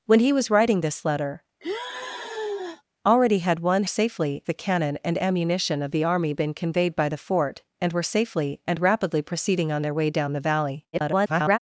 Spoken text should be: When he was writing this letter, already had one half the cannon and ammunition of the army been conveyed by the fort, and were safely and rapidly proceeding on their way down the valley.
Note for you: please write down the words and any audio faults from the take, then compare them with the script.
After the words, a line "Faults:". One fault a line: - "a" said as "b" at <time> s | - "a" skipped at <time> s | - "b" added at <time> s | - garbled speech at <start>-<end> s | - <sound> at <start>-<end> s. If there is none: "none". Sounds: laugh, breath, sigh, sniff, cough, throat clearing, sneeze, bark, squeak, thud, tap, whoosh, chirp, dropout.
When he was writing this letter, already had one safely the cannon and ammunition of the army been conveyed by the fort, and were safely and rapidly proceeding on their way down the valley. [garbled]
Faults:
- sigh at 1.6-2.8 s
- "half" said as "safely" at 3.9 s
- garbled speech at 10.9-11.6 s